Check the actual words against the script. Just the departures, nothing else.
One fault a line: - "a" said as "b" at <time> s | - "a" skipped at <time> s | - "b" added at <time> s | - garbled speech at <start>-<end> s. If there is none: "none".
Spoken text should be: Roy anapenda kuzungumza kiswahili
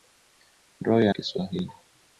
- "anapenda kuzungumza" skipped at 1.1 s